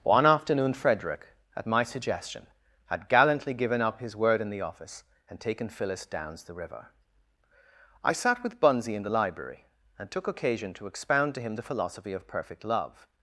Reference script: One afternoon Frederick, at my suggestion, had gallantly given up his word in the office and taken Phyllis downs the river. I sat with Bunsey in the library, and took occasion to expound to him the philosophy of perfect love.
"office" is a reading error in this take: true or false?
false